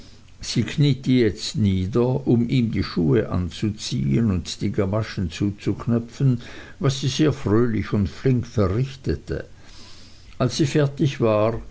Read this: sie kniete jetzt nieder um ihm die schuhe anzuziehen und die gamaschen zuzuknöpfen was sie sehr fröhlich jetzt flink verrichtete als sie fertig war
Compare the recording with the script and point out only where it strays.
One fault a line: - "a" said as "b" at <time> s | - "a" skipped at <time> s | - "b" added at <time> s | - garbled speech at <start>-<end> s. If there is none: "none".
- "jetzt" said as "und" at 7.9 s